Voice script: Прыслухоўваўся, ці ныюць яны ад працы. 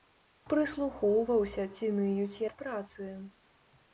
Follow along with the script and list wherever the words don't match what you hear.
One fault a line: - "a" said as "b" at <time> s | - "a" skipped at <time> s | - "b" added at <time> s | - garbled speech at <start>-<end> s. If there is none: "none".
- "яны" skipped at 2.4 s